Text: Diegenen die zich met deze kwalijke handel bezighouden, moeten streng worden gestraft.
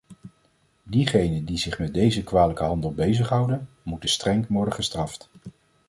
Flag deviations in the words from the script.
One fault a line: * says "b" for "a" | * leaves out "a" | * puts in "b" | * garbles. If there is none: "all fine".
all fine